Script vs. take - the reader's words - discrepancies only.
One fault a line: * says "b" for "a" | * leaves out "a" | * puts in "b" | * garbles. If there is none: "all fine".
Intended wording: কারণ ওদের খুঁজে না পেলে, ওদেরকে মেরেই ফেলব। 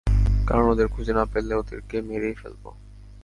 all fine